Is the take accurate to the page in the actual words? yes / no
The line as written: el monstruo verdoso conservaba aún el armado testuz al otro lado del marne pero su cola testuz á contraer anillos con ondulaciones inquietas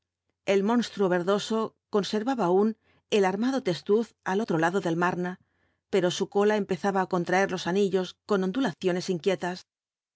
no